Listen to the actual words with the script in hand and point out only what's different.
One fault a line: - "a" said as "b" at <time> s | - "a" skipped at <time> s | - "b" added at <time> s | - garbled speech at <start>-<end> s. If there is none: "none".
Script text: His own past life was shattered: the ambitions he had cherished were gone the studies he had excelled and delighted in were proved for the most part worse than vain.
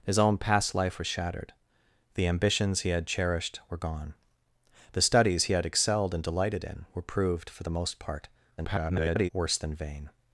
- garbled speech at 8.6-9.3 s